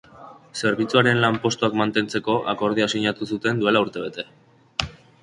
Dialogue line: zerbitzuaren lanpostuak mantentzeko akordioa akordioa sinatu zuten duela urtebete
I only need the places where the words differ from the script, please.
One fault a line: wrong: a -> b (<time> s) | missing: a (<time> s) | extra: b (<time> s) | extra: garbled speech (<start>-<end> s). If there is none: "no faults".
missing: akordioa (2.9 s)